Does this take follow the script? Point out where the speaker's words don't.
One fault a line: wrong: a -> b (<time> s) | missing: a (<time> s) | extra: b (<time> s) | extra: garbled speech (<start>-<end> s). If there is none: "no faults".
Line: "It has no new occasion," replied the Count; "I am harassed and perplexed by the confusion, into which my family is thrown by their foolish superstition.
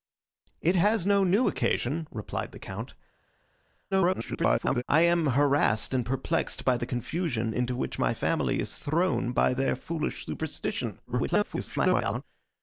extra: garbled speech (3.9-4.8 s)
extra: garbled speech (11.1-12.2 s)